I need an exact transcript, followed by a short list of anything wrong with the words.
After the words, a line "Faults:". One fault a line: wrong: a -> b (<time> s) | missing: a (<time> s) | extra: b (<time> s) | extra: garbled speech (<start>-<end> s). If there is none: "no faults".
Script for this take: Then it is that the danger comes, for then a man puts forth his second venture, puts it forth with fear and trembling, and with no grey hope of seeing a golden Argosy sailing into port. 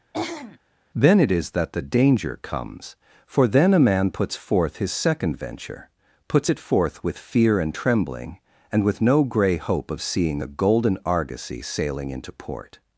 Then it is that the danger comes, for then a man puts forth his second venture, puts it forth with fear and trembling, and with no grey hope of seeing a golden Argosy sailing into port.
Faults:
no faults